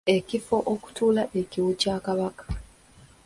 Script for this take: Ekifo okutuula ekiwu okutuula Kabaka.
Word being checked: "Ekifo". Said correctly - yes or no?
yes